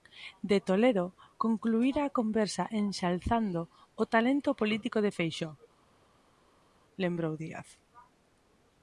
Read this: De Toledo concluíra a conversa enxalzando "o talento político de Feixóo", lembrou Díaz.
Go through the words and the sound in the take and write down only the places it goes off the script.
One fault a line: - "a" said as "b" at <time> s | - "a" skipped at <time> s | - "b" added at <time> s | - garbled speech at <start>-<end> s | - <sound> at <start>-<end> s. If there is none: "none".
none